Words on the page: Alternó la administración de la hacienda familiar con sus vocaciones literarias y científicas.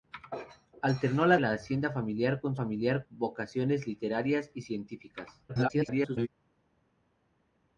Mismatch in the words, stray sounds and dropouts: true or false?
true